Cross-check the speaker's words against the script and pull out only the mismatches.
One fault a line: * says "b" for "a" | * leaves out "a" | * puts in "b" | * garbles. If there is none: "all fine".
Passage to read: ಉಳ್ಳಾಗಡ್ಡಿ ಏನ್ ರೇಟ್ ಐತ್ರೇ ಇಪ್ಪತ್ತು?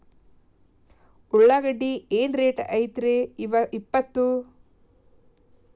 all fine